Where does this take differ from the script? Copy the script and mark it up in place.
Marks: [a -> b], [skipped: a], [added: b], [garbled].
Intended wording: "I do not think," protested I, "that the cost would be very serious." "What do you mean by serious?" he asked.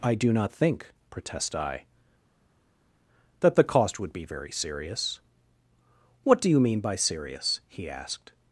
"I do not think," [protested -> protest] I, "that the cost would be very serious." "What do you mean by serious?" he asked.